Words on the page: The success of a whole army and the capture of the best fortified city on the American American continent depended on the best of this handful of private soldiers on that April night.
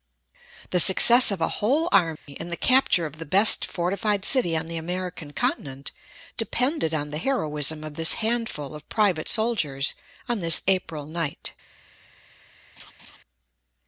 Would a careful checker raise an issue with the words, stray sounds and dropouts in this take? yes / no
yes